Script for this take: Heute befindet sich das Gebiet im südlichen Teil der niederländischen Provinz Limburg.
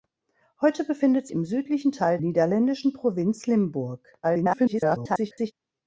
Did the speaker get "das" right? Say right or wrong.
wrong